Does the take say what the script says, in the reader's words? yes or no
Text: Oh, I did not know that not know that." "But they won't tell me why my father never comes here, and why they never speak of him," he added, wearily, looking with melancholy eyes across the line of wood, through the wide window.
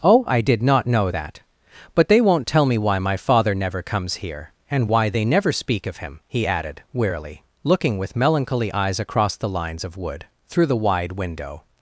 no